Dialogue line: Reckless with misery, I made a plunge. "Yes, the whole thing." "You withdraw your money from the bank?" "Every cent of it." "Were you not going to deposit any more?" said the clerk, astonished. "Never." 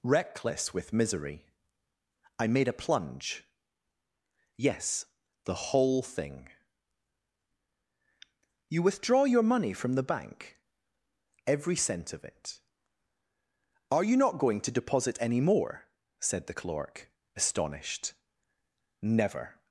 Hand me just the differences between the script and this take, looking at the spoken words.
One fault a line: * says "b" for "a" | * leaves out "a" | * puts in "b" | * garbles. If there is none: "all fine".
* says "Are" for "Were"